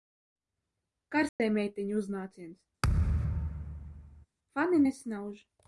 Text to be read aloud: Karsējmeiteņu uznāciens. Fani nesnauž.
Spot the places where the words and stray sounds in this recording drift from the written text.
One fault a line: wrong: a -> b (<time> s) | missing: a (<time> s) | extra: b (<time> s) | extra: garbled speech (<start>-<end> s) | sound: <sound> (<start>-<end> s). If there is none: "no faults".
sound: dropout (1.3-1.4 s)
sound: thud (2.8-4.3 s)